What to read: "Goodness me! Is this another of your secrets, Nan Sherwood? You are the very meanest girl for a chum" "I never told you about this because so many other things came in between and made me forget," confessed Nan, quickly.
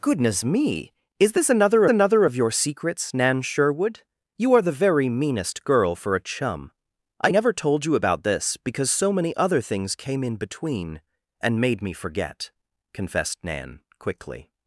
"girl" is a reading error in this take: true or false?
false